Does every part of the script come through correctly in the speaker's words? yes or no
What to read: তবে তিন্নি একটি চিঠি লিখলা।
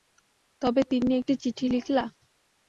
yes